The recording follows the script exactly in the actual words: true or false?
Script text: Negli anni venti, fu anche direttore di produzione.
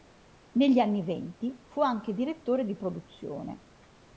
true